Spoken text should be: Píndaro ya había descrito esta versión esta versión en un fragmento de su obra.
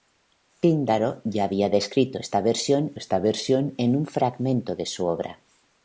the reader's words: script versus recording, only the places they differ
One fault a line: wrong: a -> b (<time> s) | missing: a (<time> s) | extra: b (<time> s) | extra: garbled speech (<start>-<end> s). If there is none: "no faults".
no faults